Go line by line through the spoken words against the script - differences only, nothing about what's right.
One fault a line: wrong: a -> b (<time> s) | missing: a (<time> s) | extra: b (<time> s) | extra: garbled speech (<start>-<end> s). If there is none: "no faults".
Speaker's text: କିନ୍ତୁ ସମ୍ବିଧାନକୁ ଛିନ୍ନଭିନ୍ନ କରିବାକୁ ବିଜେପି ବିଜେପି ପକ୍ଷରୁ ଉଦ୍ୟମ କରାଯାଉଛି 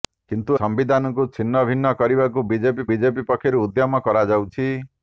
no faults